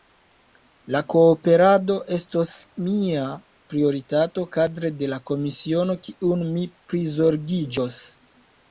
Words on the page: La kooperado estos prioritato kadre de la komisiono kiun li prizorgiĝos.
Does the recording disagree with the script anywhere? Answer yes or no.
yes